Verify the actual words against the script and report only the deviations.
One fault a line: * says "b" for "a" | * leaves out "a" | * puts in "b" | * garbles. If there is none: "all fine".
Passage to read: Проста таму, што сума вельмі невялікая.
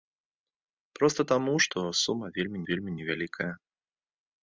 * puts in "вельмі"